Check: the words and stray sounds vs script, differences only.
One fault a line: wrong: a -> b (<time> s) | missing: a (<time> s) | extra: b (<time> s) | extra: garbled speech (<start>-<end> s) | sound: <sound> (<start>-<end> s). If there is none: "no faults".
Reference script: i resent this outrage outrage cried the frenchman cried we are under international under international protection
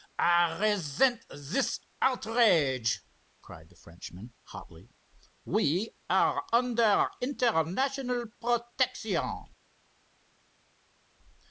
missing: outrage (3.0 s)
wrong: cried -> hotly (4.4 s)
missing: under international (8.3 s)